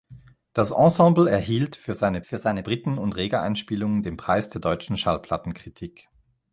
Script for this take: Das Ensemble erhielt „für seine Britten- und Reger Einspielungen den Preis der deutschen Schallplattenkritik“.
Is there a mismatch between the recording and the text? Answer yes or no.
yes